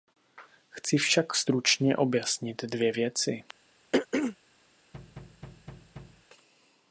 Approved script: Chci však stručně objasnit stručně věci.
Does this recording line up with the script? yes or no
no